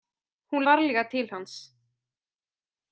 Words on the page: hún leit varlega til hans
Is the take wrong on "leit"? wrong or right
wrong